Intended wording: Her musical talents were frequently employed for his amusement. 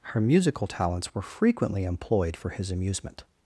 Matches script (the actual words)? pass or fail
pass